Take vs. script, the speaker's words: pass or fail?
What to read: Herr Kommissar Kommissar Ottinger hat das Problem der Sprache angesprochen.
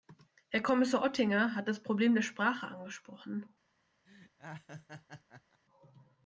fail